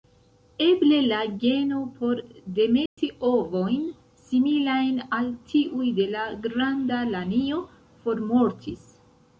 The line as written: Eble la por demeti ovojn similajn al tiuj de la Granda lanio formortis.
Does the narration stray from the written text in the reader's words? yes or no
yes